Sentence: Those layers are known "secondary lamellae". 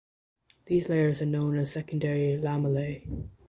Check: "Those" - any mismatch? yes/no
yes